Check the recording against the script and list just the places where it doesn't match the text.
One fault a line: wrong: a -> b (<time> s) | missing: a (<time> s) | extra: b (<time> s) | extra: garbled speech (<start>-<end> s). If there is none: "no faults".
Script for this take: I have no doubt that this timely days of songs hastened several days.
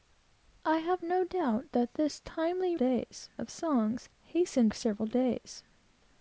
no faults